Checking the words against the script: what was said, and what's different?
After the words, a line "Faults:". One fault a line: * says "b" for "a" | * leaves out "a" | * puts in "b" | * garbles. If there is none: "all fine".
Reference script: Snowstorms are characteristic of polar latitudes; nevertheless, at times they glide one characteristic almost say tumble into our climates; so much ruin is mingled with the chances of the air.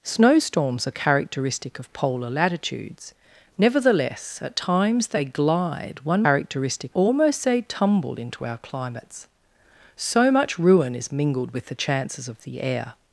Snowstorms are characteristic of polar latitudes; nevertheless, at times they glide one characteristic almost say tumble into our climates; so much ruin is mingled with the chances of the air.
Faults:
all fine